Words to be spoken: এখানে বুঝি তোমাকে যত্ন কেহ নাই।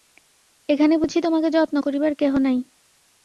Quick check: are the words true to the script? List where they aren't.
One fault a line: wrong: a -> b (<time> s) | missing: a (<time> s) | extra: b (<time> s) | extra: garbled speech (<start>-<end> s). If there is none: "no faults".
extra: করিবার (1.8 s)